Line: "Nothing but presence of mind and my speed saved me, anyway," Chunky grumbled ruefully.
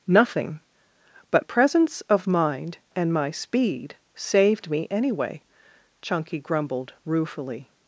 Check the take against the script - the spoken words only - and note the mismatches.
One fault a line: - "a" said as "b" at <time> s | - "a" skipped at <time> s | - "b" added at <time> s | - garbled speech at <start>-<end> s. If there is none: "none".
none